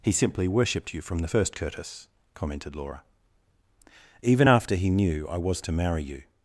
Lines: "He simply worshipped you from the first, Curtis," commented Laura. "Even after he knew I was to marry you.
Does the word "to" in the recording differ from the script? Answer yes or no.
no